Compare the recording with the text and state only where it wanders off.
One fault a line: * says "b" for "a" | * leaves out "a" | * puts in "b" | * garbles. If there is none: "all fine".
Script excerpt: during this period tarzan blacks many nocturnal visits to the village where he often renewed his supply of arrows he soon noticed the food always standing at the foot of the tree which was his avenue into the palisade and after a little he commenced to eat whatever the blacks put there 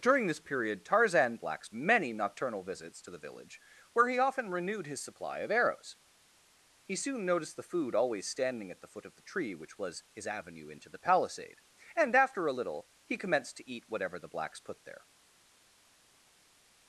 all fine